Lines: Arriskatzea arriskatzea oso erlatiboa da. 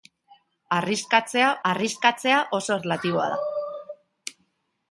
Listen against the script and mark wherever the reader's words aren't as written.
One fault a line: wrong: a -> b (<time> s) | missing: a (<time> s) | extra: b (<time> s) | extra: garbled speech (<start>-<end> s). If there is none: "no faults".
no faults